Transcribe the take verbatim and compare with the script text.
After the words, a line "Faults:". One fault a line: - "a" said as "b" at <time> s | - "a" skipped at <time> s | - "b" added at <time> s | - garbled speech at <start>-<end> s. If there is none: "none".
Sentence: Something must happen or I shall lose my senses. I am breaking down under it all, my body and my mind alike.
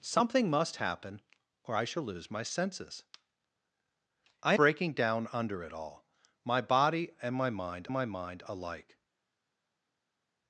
Something must happen or I shall lose my senses. I breaking down under it all, my body and my mind my mind alike.
Faults:
- "am" skipped at 4.5 s
- "my mind" added at 7.9 s